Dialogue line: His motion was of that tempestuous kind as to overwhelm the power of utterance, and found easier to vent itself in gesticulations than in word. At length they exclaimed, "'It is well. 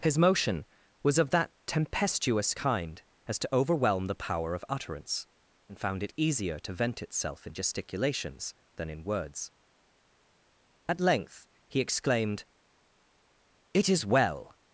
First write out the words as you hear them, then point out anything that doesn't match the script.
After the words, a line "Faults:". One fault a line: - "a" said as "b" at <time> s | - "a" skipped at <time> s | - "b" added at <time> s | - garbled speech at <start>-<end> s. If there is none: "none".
His motion was of that tempestuous kind as to overwhelm the power of utterance, and found it easier to vent itself in gesticulations than in words. At length he exclaimed, "'It is well.
Faults:
- "it" added at 6.0 s
- "word" said as "words" at 9.0 s
- "they" said as "he" at 11.7 s